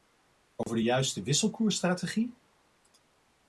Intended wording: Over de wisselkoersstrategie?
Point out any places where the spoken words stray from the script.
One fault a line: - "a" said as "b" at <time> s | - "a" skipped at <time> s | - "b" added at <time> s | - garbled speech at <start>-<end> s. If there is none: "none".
- "juiste" added at 0.8 s